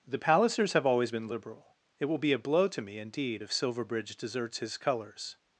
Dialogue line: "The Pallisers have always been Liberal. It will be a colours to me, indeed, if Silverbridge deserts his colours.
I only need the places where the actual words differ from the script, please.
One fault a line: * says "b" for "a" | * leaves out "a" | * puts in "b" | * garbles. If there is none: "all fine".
* says "blow" for "colours"